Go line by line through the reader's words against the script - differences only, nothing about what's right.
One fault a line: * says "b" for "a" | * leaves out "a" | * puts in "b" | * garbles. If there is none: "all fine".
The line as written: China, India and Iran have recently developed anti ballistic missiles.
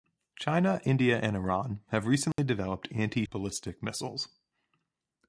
all fine